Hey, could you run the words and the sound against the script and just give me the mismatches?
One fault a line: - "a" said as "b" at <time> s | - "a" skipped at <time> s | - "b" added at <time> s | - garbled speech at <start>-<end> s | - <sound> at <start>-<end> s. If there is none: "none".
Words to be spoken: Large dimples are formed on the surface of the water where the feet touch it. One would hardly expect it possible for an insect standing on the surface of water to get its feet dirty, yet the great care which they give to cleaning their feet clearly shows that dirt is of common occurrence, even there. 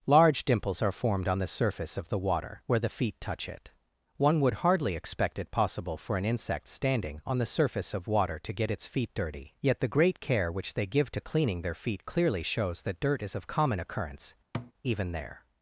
- thud at 14.5-14.7 s